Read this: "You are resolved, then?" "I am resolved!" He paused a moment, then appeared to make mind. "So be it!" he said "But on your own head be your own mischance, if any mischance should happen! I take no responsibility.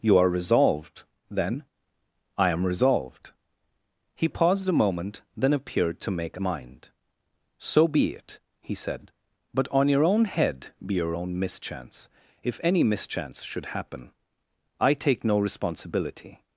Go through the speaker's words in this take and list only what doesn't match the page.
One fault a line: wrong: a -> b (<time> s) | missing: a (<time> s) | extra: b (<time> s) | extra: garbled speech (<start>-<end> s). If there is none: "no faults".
no faults